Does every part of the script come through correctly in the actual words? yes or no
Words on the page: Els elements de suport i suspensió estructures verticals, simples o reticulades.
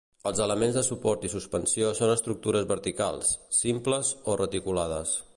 no